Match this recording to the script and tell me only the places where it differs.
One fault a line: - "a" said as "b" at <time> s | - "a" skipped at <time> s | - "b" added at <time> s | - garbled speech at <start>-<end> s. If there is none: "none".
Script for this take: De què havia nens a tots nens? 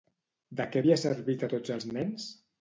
- "nens" said as "servit" at 1.0 s
- "els" added at 1.8 s